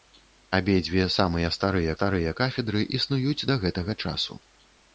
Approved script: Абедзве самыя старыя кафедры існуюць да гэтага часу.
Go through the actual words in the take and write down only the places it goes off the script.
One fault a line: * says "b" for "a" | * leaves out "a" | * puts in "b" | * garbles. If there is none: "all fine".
* puts in "старыя"